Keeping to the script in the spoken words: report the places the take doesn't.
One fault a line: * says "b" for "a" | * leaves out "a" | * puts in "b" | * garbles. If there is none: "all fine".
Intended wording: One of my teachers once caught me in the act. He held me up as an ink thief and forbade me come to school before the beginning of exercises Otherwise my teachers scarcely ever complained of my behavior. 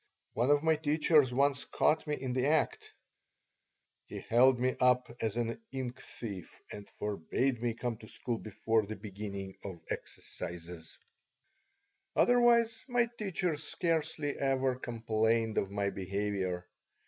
all fine